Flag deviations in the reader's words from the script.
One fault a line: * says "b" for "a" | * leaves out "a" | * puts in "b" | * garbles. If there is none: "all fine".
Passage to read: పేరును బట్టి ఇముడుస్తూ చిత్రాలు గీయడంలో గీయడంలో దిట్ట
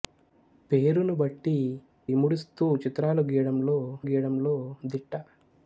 all fine